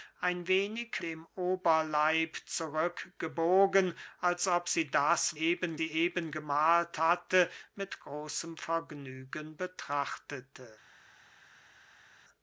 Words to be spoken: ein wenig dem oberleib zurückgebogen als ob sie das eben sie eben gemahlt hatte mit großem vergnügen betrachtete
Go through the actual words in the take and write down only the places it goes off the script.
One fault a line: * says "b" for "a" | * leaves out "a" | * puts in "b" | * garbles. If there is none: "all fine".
all fine